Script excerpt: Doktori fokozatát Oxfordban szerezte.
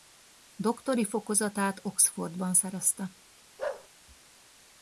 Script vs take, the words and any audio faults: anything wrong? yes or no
yes